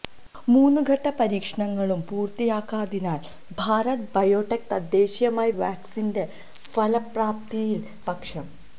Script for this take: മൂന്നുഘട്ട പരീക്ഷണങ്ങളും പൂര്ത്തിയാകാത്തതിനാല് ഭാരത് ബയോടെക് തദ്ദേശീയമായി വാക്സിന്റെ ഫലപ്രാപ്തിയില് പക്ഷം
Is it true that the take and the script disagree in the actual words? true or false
false